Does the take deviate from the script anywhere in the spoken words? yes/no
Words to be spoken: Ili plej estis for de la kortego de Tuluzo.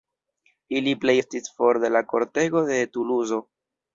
no